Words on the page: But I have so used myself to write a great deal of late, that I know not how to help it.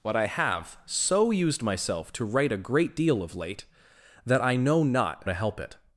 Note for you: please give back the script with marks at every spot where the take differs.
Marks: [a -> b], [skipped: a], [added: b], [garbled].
But I have so used myself to write a great deal of late, that I know not [skipped: how] to help it.